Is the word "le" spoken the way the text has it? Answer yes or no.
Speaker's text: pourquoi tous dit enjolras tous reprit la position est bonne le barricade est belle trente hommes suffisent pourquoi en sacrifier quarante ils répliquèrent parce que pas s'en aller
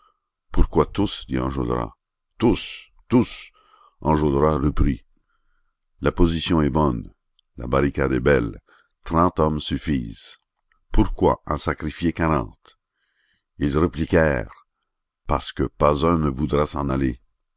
no